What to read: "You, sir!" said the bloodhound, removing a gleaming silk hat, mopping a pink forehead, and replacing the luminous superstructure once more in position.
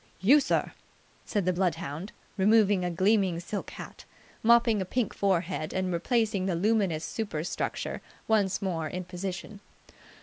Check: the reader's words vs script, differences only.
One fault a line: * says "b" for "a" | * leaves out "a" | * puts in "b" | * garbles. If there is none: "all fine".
all fine